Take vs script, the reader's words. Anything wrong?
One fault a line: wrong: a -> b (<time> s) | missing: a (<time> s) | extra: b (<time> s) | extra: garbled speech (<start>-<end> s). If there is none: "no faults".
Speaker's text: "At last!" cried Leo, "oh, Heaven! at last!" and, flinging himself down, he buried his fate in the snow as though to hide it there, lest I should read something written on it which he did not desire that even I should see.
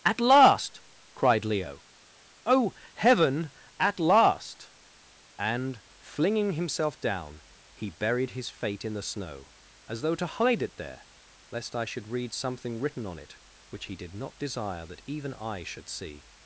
no faults